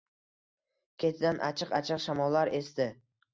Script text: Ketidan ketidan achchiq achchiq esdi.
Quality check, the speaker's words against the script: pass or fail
fail